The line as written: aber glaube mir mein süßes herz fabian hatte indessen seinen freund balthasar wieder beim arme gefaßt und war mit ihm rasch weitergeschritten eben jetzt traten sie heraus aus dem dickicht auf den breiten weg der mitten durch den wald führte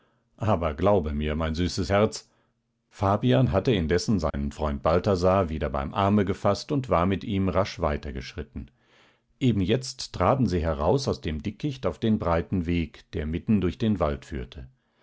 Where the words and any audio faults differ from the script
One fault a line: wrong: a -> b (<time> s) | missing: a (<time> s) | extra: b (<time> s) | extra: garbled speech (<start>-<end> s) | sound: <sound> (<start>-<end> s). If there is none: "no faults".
sound: dropout (4.3-4.3 s)